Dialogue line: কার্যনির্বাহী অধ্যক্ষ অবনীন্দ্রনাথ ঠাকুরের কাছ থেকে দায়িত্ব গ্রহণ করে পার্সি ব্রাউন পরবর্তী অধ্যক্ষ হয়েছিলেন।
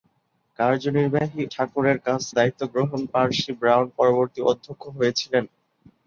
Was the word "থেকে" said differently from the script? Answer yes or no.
yes